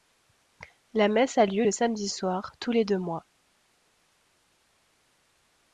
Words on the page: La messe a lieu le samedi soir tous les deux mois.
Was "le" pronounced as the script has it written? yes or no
yes